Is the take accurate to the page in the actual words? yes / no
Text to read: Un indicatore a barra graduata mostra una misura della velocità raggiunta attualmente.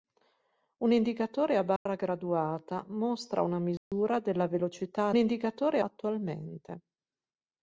no